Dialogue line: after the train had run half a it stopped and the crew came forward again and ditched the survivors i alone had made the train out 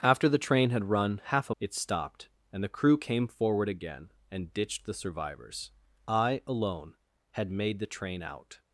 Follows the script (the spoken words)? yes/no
yes